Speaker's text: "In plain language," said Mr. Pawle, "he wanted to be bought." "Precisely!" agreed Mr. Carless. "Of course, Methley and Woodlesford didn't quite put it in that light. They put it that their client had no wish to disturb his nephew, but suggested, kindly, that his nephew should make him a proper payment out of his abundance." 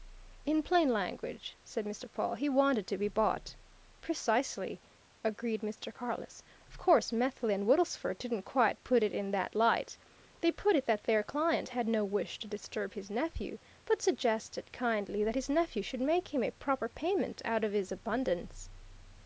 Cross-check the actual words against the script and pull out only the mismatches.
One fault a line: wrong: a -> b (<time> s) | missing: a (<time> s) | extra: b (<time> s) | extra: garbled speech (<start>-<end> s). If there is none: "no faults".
no faults